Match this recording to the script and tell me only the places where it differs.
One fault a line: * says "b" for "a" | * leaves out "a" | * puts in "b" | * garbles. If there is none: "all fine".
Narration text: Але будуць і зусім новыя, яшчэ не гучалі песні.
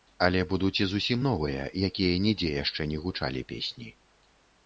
* puts in "якія нідзе"